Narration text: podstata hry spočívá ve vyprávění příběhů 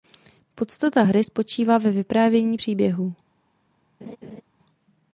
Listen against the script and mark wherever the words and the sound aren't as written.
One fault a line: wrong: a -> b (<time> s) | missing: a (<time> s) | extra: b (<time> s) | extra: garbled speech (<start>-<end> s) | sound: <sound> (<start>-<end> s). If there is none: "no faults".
sound: laugh (4.0-4.4 s)